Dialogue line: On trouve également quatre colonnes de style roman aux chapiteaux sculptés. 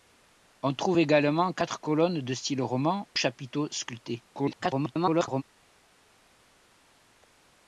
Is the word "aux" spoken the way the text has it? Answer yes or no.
no